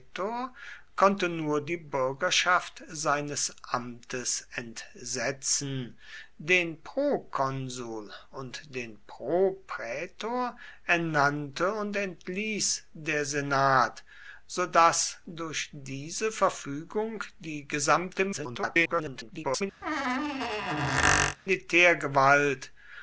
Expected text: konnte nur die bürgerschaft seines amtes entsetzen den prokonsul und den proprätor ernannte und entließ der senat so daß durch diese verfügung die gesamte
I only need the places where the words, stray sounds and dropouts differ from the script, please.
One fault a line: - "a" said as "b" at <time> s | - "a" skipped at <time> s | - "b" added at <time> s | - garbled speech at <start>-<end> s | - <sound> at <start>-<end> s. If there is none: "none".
- garbled speech at 18.3-19.6 s
- squeak at 19.8-21.4 s